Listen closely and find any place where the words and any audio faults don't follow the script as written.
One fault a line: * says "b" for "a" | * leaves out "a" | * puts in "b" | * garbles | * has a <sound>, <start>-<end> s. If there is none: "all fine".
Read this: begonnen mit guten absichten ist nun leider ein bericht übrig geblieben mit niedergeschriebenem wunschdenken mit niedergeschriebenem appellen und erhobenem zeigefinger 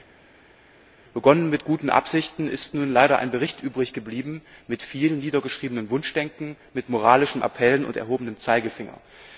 * puts in "viel"
* says "moralischen" for "niedergeschriebenem"